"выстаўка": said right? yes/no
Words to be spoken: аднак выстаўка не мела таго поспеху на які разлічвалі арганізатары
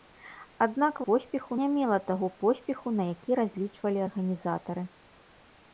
no